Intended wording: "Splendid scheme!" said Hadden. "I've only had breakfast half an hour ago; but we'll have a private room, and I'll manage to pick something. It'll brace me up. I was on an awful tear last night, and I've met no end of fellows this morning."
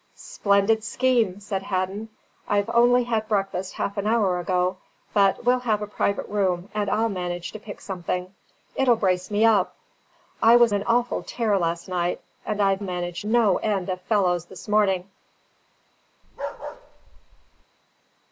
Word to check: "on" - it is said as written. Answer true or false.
false